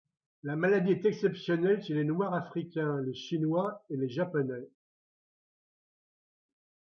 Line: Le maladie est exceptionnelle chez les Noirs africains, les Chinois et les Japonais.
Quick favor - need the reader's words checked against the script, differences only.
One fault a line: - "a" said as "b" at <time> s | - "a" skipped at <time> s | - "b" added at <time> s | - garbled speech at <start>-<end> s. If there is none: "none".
- "Le" said as "La" at 0.4 s